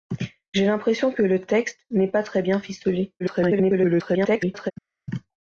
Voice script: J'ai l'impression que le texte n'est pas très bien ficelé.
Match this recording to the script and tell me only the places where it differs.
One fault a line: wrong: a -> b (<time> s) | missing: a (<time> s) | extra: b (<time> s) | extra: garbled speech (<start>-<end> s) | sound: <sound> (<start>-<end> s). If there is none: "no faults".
extra: garbled speech (3.2-4.7 s)